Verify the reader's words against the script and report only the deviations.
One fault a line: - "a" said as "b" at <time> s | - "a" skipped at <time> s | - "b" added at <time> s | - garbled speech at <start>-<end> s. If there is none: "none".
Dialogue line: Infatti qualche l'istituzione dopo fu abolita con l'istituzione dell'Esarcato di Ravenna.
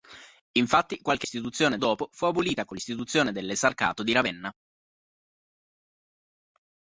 none